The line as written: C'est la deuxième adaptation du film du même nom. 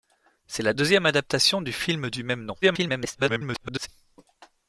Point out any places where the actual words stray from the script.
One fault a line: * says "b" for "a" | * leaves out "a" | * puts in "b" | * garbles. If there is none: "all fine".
* garbles